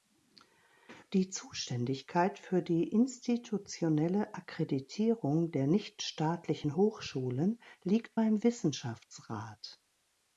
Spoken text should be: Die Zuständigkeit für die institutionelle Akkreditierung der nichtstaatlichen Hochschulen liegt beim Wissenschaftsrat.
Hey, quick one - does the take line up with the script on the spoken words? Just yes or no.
yes